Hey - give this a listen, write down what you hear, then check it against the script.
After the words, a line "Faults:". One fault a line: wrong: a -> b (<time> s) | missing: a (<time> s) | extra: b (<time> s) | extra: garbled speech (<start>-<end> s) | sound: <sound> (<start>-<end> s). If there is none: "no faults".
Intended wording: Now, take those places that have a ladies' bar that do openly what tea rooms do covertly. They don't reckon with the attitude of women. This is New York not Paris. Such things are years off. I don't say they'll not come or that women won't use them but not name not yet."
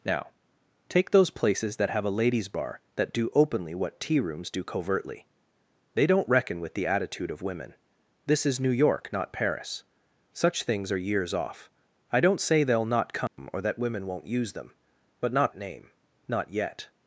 Now, take those places that have a ladies' bar that do openly what tea rooms do covertly. They don't reckon with the attitude of women. This is New York not Paris. Such things are years off. I don't say they'll not come or that women won't use them but not name not yet."
Faults:
sound: dropout (13.3-13.4 s)